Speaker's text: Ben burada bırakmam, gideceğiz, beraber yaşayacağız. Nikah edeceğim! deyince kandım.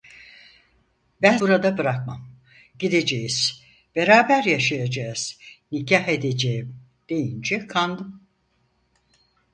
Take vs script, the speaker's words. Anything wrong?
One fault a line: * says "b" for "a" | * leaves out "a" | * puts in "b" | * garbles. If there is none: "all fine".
all fine